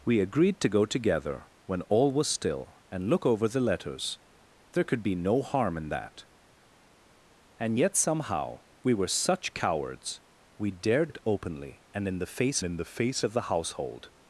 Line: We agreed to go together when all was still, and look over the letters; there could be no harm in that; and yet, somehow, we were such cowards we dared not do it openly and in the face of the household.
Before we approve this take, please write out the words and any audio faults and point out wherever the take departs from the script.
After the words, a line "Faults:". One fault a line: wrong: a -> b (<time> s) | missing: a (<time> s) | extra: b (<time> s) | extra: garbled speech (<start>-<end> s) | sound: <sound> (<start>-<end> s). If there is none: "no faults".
We agreed to go together when all was still, and look over the letters; there could be no harm in that; and yet, somehow, we were such cowards we dared it openly and in the face in the face of the household.
Faults:
missing: not do (11.1 s)
extra: in the face (12.6 s)